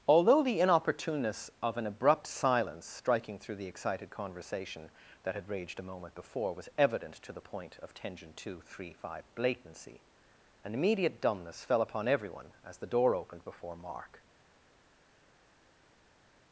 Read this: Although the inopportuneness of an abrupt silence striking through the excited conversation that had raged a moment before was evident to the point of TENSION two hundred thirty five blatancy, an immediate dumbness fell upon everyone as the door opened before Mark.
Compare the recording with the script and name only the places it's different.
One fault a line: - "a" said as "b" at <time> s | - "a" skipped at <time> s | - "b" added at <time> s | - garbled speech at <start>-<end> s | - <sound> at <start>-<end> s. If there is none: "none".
none